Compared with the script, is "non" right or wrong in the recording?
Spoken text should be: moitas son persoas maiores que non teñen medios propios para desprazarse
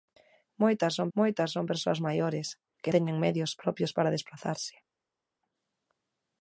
wrong